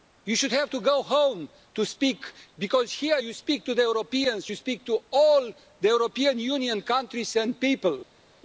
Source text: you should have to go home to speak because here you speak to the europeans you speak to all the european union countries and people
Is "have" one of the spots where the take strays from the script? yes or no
no